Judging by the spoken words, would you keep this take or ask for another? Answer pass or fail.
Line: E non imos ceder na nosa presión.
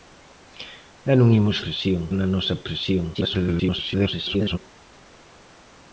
fail